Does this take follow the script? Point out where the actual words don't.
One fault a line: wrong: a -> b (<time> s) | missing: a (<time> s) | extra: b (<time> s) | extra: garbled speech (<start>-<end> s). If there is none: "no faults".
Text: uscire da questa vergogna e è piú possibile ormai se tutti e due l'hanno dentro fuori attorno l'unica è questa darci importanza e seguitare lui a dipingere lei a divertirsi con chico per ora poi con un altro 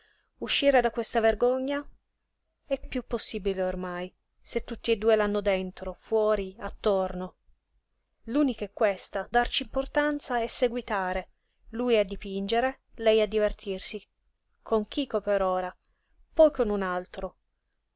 no faults